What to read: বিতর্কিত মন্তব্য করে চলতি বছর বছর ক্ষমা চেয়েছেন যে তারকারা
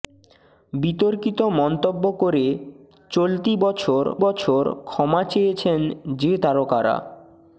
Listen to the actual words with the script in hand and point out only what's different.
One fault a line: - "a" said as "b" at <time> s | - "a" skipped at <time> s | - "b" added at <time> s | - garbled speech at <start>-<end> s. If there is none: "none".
none